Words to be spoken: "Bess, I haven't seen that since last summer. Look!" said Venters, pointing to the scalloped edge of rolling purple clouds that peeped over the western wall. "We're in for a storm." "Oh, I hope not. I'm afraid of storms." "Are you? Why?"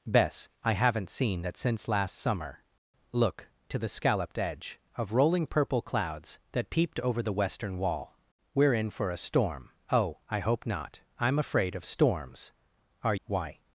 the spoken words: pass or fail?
fail